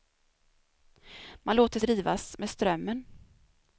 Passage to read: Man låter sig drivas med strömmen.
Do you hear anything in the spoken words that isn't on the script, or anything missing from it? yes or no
yes